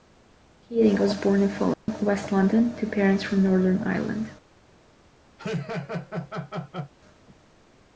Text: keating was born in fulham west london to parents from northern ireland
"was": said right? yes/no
yes